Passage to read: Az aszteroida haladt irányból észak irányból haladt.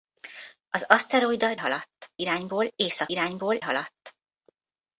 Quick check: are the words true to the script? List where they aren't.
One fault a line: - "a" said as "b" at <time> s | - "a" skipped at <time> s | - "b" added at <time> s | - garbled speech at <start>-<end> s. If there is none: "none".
none